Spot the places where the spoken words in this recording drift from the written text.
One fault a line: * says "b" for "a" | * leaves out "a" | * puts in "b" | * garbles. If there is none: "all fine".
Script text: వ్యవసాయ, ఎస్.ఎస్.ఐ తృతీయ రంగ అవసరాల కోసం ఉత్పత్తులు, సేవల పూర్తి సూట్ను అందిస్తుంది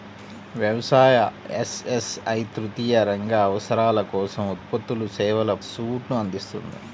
* leaves out "పూర్తి"